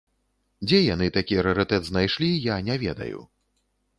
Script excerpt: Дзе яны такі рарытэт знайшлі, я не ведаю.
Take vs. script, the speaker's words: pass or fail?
pass